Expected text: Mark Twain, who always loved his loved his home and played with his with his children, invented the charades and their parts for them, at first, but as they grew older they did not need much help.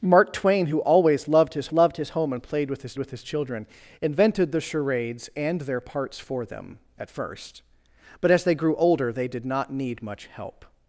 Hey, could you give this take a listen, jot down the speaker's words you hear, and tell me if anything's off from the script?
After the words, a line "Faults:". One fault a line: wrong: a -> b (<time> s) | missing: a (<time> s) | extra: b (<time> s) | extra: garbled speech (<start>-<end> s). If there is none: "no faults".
Mark Twain, who always loved his loved his home and played with his with his children, invented the charades and their parts for them, at first, but as they grew older they did not need much help.
Faults:
no faults